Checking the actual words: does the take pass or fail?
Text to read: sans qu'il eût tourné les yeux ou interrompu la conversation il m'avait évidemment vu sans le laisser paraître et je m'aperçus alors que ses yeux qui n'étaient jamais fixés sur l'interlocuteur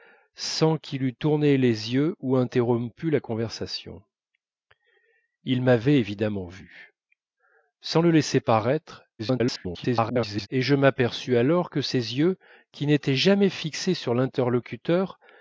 fail